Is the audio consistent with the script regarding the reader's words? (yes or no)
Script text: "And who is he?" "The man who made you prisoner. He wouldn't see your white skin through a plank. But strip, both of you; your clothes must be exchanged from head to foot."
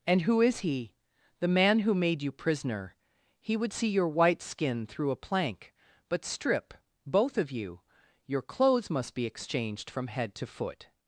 no